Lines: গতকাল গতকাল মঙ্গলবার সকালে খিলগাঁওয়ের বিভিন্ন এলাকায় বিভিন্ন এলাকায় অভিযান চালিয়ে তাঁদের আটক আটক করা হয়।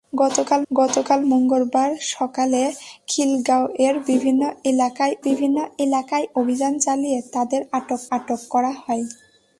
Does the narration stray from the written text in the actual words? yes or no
no